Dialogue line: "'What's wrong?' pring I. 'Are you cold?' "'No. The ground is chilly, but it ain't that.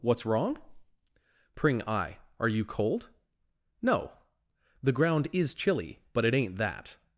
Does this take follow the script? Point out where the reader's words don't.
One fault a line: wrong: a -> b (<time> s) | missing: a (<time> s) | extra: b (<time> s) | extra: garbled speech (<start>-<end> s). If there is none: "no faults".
no faults